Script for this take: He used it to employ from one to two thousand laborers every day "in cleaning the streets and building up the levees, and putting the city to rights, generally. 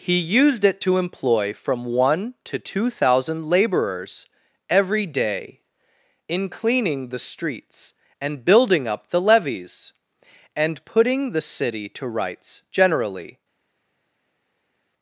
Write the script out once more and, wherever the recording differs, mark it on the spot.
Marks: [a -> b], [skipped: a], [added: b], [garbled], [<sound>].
He used it to employ from one to two thousand laborers every day "in cleaning the streets and building up the levees, and putting the city to rights, generally.